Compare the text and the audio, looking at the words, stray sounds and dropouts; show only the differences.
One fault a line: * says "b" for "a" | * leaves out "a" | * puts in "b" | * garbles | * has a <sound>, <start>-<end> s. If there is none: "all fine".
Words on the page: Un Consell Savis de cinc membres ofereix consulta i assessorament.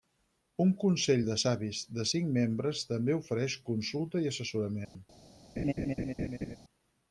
* puts in "de"
* puts in "també"
* has a dropout, 4.8-5.0 s
* has a laugh, 5.6-6.6 s